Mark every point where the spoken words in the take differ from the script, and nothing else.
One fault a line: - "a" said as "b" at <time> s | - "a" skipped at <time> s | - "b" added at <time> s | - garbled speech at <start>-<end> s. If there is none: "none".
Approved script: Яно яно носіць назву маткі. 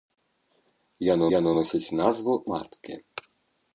none